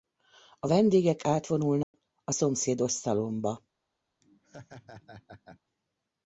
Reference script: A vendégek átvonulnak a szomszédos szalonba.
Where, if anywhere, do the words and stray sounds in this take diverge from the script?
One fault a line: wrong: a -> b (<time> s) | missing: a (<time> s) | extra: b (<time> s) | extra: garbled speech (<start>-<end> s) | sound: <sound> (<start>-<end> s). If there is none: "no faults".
sound: dropout (1.8-1.9 s)
sound: laugh (4.2-5.6 s)